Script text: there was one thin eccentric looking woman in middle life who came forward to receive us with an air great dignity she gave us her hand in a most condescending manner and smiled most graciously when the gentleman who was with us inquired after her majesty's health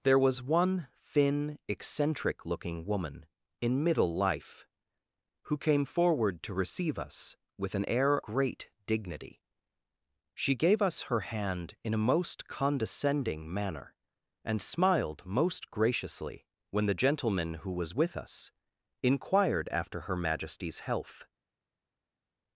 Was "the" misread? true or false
false